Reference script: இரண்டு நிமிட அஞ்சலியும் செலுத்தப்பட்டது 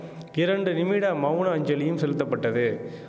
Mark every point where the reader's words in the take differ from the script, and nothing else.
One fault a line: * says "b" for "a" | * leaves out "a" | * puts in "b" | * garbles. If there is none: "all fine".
* puts in "மவுன"